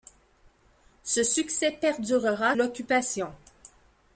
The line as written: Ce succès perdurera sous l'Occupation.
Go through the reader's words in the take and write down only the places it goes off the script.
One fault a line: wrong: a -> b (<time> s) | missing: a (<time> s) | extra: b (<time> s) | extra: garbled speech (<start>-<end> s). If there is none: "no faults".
missing: sous (2.5 s)